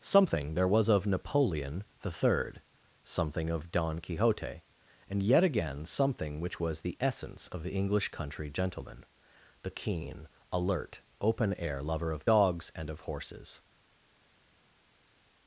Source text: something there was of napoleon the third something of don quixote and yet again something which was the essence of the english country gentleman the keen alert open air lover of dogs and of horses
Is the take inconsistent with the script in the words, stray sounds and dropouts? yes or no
no